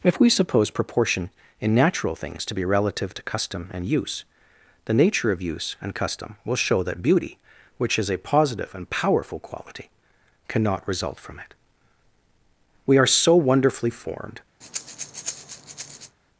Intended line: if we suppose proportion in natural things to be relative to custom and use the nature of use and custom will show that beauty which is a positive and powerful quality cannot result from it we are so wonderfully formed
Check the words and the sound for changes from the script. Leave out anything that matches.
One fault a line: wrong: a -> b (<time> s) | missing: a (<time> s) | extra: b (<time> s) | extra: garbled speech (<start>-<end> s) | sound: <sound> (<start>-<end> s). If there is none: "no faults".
sound: breath (14.6-16.2 s)